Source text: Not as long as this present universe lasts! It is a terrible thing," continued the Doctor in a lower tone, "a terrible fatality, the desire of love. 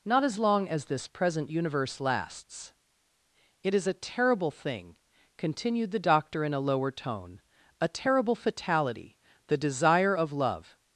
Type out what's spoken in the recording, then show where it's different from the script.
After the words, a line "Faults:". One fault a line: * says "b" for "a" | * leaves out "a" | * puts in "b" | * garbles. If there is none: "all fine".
Not as long as this present universe lasts! It is a terrible thing," continued the Doctor in a lower tone, "a terrible fatality, the desire of love.
Faults:
all fine